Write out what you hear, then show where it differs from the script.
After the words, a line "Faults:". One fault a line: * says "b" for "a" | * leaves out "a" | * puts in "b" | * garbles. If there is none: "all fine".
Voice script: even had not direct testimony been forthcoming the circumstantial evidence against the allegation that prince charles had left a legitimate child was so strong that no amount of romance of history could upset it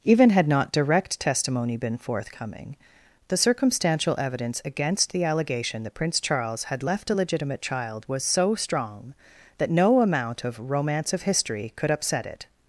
even had not direct testimony been forthcoming the circumstantial evidence against the allegation that prince charles had left a legitimate child was so strong that no amount of romance of history could upset it
Faults:
all fine